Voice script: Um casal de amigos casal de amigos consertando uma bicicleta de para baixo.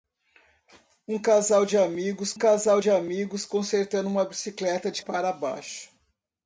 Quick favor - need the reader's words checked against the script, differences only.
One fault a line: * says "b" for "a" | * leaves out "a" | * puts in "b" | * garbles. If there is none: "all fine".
all fine